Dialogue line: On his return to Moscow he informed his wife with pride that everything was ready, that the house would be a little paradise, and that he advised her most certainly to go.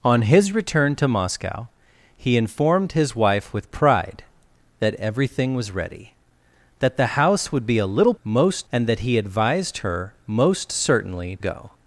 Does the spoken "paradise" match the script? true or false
false